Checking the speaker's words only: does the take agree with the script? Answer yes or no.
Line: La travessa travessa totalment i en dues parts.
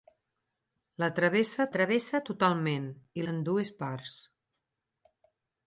yes